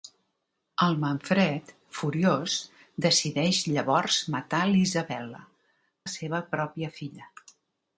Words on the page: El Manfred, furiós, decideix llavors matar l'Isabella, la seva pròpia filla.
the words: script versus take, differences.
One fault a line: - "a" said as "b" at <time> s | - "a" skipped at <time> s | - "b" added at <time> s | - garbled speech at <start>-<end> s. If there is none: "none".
none